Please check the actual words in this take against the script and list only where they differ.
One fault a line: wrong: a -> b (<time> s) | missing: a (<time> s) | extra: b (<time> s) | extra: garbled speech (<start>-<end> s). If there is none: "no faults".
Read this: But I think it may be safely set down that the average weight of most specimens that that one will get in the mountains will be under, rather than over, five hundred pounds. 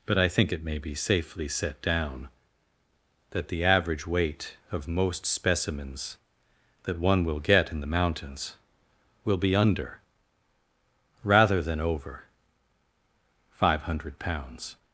missing: that (7.0 s)